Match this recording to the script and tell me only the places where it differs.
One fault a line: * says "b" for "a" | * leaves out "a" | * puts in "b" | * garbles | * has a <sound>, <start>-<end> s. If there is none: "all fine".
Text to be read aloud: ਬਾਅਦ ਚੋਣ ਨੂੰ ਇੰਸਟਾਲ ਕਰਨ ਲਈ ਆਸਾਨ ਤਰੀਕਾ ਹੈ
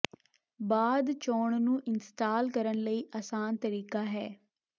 all fine